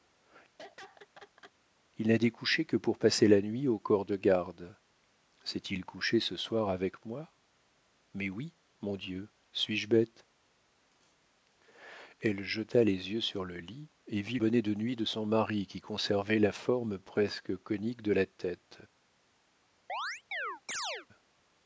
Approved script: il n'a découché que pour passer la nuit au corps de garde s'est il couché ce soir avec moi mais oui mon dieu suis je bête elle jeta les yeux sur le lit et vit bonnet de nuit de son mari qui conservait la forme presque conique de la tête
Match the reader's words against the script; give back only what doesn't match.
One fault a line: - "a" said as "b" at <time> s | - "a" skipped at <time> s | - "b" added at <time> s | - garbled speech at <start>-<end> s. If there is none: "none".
none